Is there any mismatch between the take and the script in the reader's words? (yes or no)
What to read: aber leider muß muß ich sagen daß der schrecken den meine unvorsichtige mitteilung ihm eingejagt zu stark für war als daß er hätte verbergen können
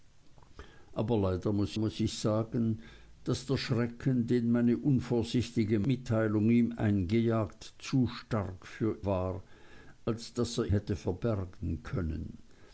no